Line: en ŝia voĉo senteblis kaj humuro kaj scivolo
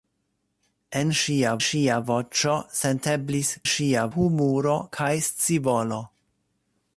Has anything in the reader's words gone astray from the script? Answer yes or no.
yes